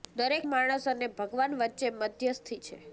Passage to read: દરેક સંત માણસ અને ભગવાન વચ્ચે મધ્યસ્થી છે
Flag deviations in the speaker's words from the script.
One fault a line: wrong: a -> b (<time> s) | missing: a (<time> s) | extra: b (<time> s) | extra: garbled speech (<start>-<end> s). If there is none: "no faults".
missing: સંત (0.5 s)